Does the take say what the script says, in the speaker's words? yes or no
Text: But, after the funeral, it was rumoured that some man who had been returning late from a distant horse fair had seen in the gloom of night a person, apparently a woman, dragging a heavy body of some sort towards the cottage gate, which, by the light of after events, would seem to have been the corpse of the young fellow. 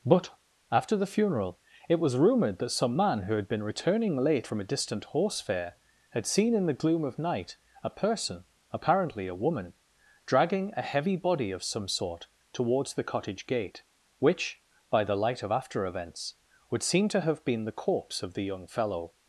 yes